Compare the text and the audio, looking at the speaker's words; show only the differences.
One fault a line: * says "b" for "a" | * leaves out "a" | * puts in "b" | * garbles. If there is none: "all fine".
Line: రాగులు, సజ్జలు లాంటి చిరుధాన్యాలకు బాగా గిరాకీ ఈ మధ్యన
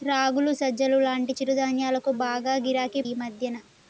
all fine